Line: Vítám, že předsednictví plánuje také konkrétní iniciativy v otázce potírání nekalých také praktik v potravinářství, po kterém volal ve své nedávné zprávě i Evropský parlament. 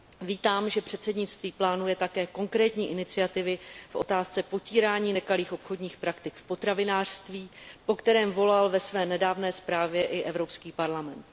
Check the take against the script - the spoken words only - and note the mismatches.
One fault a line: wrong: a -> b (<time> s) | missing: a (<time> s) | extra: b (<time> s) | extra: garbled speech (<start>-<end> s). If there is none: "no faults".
wrong: také -> obchodních (5.5 s)